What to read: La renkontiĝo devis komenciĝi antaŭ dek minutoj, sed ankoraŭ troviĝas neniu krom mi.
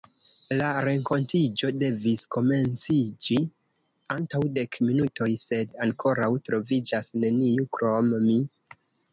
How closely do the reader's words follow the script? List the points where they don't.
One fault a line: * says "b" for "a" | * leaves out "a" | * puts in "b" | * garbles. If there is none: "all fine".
all fine